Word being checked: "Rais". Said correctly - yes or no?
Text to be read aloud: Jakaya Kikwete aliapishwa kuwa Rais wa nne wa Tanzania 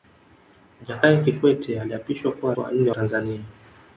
no